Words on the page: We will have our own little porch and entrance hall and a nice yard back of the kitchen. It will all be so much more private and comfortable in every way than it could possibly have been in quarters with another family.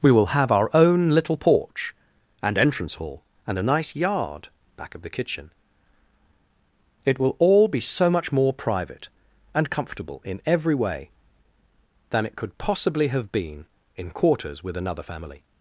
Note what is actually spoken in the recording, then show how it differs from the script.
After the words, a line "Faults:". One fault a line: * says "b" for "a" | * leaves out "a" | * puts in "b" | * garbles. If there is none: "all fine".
We will have our own little porch and entrance hall and a nice yard back of the kitchen. It will all be so much more private and comfortable in every way than it could possibly have been in quarters with another family.
Faults:
all fine